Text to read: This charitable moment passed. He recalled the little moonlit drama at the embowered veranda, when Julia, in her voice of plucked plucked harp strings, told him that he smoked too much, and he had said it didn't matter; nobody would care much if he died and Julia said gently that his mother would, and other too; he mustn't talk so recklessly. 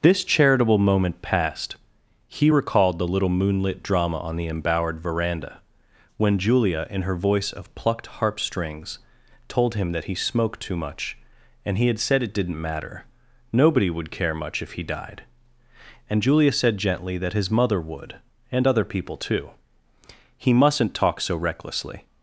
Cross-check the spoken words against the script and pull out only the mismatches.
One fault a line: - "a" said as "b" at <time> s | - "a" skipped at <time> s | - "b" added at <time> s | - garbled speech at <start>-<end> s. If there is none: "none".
- "at" said as "on" at 4.2 s
- "plucked" skipped at 8.1 s
- "people" added at 18.8 s